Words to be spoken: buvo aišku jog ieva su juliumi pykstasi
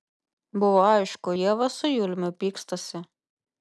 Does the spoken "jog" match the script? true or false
false